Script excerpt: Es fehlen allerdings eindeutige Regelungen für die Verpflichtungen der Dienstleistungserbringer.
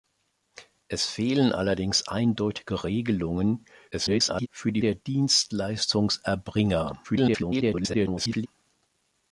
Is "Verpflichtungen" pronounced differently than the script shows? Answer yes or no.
yes